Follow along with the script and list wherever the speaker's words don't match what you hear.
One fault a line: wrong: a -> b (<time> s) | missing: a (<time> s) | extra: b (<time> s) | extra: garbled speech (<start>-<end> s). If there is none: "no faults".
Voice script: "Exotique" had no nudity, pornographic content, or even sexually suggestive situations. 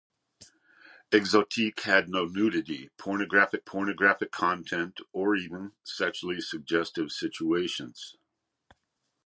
extra: pornographic (3.6 s)